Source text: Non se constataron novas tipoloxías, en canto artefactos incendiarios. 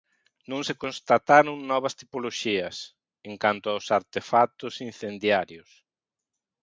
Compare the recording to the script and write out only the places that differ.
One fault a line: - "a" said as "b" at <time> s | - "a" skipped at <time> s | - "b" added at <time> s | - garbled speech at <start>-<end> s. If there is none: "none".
- "aos" added at 3.7 s